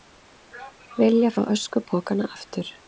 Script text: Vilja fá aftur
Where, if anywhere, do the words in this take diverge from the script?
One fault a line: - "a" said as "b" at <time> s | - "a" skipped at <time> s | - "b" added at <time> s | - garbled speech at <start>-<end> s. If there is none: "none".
- "öskupokana" added at 1.5 s